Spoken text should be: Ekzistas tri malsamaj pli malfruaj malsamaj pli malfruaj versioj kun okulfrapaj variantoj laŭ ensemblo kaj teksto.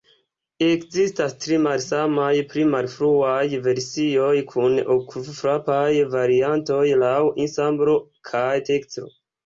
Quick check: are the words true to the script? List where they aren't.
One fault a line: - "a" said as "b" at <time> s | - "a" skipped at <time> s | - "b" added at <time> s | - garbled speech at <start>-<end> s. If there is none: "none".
- "malsamaj pli malfruaj" skipped at 3.4 s